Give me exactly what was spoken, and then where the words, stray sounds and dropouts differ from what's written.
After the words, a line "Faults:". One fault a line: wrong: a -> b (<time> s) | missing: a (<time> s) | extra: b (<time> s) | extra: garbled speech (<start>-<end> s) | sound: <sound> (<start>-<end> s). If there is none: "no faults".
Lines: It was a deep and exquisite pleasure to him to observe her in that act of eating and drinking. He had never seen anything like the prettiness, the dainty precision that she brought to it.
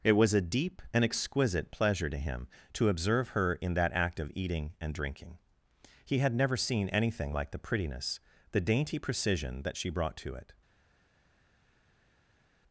It was a deep and exquisite pleasure to him to observe her in that act of eating and drinking. He had never seen anything like the prettiness, the dainty precision that she brought to it.
Faults:
no faults